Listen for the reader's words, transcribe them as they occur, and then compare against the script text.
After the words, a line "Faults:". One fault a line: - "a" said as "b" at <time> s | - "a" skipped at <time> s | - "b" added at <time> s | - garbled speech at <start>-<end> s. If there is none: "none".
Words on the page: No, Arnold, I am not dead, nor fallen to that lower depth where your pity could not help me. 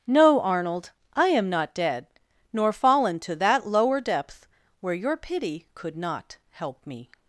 No, Arnold, I am not dead, nor fallen to that lower depth where your pity could not help me.
Faults:
none